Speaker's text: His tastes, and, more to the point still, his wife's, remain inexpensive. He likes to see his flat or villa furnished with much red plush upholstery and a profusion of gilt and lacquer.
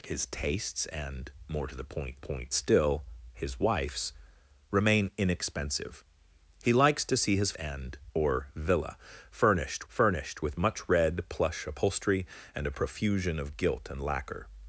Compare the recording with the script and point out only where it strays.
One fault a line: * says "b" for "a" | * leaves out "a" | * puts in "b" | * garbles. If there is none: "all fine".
* puts in "point"
* says "and" for "flat"
* puts in "furnished"